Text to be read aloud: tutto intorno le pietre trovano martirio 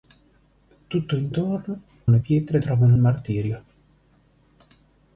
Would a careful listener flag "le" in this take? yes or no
no